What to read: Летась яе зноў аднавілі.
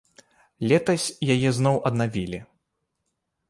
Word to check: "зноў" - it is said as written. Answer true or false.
true